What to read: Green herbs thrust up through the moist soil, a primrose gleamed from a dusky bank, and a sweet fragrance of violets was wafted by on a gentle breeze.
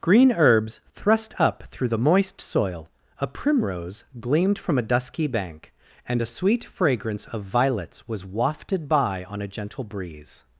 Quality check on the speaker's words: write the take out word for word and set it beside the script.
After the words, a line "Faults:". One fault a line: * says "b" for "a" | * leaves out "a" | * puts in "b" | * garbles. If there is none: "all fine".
Green herbs thrust up through the moist soil, a primrose gleamed from a dusky bank, and a sweet fragrance of violets was wafted by on a gentle breeze.
Faults:
all fine